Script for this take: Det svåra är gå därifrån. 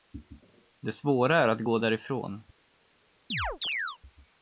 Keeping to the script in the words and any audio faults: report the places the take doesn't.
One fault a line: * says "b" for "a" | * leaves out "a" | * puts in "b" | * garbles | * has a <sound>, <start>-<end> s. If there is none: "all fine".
* puts in "att"
* has a chirp, 3.3-4.0 s